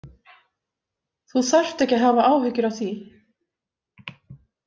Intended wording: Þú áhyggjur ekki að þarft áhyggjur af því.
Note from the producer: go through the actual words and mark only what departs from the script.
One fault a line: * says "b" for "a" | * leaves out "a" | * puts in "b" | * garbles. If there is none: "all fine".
* says "þarft" for "áhyggjur"
* says "hafa" for "þarft"